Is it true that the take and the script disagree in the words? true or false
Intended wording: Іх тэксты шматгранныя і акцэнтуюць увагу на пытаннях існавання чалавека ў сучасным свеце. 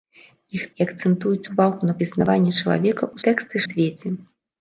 true